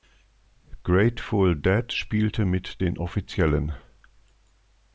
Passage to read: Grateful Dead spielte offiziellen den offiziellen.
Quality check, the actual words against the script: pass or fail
fail